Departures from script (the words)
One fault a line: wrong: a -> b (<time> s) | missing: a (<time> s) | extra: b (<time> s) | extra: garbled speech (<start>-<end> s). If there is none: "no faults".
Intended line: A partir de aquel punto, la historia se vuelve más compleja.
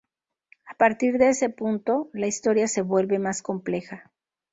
wrong: aquel -> ese (1.3 s)